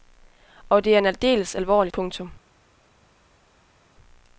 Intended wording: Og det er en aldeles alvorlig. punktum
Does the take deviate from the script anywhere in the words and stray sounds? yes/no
no